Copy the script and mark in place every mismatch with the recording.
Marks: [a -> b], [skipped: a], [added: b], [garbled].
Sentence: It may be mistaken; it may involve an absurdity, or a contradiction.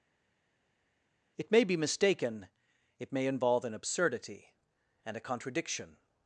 It may be mistaken; it may involve an absurdity, [or -> and] a contradiction.